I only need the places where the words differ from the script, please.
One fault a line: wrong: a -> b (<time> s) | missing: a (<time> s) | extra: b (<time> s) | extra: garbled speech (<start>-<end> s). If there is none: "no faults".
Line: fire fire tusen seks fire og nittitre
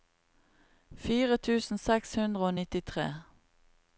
missing: fire (1.4 s)
wrong: fire -> hundre (2.2 s)